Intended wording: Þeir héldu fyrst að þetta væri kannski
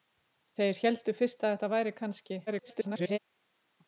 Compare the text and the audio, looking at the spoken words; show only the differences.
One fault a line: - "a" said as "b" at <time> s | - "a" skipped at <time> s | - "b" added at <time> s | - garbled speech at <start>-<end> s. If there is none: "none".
- garbled speech at 2.5-3.2 s